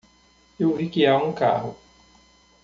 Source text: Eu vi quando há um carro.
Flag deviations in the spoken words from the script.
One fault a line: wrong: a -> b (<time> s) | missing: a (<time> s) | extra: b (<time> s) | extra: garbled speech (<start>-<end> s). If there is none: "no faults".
wrong: quando -> que (0.9 s)